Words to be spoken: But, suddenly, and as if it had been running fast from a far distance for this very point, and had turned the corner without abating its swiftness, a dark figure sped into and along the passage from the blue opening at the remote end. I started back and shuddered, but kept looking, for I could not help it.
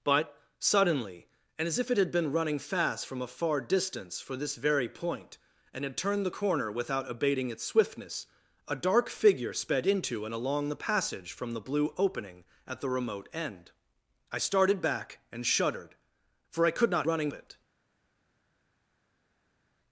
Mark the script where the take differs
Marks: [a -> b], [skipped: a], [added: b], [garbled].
But, suddenly, and as if it had been running fast from a far distance for this very point, and had turned the corner without abating its swiftness, a dark figure sped into and along the passage from the blue opening at the remote end. I started back and shuddered, [skipped: but kept looking,] for I could not [help -> running] it.